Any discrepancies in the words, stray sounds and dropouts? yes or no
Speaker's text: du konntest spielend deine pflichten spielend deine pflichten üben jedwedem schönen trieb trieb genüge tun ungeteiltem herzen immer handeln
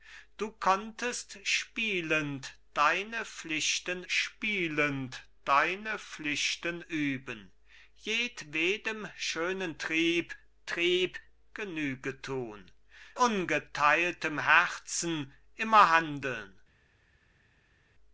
no